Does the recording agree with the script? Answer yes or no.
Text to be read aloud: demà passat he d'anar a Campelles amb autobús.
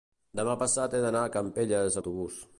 no